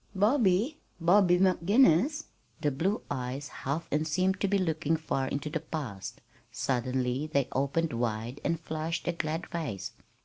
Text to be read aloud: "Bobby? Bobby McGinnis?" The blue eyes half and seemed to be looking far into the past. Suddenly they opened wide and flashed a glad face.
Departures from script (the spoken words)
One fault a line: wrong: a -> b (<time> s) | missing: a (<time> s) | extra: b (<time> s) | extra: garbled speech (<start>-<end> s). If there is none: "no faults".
no faults